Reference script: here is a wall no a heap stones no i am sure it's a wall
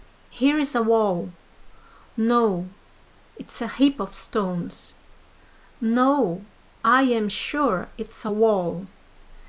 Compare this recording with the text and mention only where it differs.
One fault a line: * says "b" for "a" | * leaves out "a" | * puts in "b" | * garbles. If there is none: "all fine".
* puts in "it's"
* puts in "of"